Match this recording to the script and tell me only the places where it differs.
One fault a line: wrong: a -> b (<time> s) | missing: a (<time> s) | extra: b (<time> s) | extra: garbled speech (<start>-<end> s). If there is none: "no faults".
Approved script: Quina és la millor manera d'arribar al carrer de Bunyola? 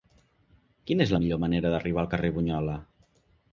no faults